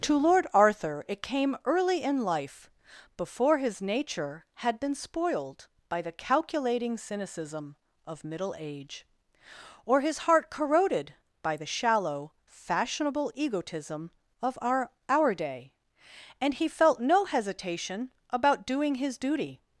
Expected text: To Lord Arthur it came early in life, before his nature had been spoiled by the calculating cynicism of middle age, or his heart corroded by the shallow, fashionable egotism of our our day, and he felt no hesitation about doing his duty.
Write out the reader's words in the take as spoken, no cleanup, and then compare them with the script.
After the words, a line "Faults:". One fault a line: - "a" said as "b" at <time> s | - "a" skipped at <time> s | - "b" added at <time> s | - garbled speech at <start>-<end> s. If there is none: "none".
To Lord Arthur it came early in life, before his nature had been spoiled by the calculating cynicism of middle age, or his heart corroded by the shallow, fashionable egotism of our our day, and he felt no hesitation about doing his duty.
Faults:
none